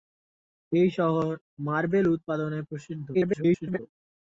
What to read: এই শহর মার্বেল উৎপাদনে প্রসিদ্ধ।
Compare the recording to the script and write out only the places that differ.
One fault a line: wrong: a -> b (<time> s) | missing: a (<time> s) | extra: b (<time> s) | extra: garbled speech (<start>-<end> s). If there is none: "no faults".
extra: garbled speech (3.1-3.8 s)